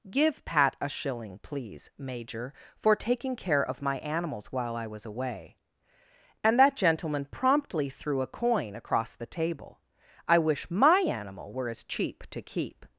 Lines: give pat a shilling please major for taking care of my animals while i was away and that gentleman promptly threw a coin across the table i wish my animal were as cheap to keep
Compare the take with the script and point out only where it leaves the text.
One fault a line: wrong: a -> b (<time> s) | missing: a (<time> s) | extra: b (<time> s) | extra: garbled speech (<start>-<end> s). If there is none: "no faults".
no faults